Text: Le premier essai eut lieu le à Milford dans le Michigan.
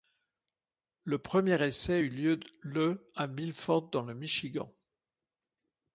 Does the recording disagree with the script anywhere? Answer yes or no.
no